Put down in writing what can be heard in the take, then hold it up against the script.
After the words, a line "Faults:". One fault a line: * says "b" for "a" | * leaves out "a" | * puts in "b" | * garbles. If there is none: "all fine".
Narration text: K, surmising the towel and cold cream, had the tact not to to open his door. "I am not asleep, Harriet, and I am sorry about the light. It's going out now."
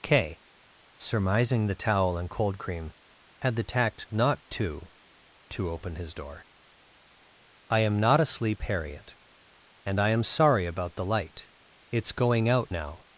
K, surmising the towel and cold cream, had the tact not to to open his door. "I am not asleep, Harriet, and I am sorry about the light. It's going out now."
Faults:
all fine